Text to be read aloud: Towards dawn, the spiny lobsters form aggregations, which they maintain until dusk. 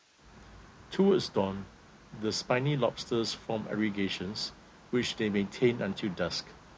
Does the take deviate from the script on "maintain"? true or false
false